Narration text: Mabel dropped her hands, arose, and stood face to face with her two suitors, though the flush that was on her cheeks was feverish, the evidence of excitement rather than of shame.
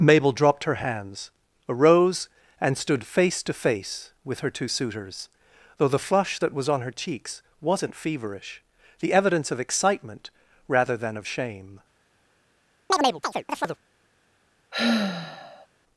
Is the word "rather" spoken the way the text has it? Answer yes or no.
yes